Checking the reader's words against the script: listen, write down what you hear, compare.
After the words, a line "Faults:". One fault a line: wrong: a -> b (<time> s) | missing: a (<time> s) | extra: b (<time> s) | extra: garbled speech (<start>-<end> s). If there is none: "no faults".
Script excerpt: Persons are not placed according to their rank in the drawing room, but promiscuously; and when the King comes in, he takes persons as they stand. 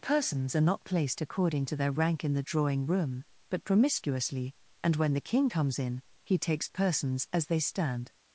Persons are not placed according to their rank in the drawing room, but promiscuously; and when the King comes in, he takes persons as they stand.
Faults:
no faults